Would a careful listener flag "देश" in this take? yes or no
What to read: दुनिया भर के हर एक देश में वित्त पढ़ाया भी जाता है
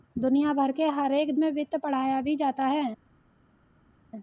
yes